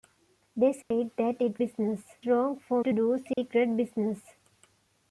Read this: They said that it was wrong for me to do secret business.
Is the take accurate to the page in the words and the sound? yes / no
no